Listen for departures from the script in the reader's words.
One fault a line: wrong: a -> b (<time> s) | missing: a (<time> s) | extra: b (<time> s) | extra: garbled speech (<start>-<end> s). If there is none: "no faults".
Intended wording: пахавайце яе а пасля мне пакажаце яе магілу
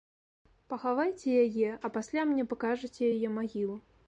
no faults